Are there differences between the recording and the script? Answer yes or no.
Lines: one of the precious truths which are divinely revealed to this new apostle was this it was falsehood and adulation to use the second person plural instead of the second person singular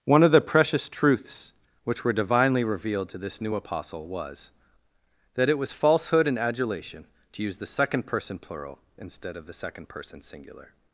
yes